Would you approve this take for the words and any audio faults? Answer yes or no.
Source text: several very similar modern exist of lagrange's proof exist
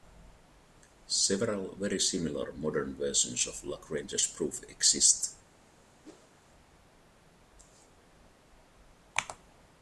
no